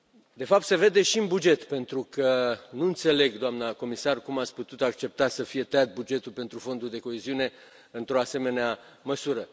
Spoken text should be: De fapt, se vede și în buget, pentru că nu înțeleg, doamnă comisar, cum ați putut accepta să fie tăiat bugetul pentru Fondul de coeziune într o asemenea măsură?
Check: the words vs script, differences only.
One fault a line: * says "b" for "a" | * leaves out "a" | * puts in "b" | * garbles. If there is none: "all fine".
all fine